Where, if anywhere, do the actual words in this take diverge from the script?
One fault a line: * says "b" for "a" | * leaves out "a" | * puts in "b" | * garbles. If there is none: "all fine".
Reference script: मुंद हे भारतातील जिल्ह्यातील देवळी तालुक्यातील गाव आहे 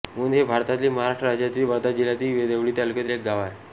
* puts in "महाराष्ट्र राज्यातील वर्धा"
* puts in "एक"